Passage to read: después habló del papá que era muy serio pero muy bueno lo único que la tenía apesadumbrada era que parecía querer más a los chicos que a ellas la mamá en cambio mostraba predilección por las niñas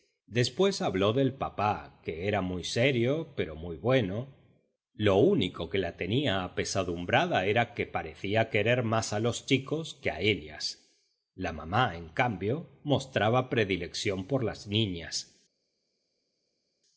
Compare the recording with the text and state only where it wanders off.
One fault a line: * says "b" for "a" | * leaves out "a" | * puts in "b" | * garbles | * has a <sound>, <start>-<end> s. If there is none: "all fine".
all fine